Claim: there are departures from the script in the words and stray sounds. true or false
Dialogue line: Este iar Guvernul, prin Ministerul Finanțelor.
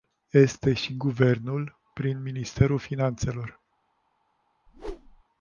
true